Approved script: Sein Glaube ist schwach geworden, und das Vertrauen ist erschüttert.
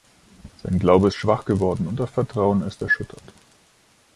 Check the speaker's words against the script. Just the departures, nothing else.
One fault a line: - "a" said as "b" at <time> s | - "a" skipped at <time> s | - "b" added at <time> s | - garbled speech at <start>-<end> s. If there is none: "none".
none